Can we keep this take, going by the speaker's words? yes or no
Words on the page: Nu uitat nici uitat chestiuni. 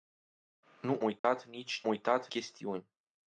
yes